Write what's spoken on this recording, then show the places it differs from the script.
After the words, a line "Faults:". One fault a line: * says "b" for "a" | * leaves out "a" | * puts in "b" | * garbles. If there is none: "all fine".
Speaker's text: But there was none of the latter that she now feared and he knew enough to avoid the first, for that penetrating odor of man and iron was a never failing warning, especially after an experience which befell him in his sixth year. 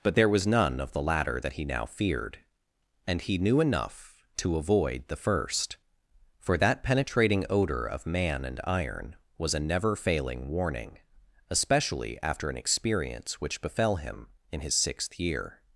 But there was none of the latter that he now feared and he knew enough to avoid the first, for that penetrating odor of man and iron was a never failing warning, especially after an experience which befell him in his sixth year.
Faults:
* says "he" for "she"